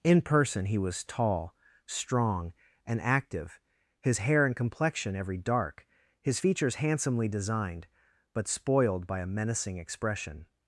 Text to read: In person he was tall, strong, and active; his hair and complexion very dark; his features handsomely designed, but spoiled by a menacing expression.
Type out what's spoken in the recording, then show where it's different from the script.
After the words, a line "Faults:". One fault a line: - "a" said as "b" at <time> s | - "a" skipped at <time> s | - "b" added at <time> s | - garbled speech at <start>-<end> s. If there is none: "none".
In person he was tall, strong, and active; his hair and complexion every dark; his features handsomely designed, but spoiled by a menacing expression.
Faults:
- "very" said as "every" at 5.2 s